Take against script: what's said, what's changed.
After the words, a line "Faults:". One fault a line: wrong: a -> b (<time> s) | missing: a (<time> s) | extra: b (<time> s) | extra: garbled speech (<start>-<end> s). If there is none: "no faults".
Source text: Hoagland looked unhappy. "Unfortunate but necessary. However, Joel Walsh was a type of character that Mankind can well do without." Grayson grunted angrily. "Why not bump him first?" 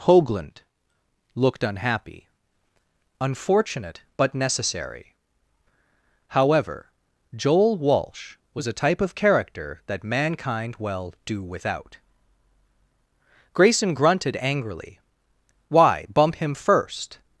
Hoagland looked unhappy. "Unfortunate but necessary. However, Joel Walsh was a type of character that Mankind well do without." Grayson grunted angrily. "Why bump him first?"
Faults:
missing: can (10.8 s)
missing: not (16.1 s)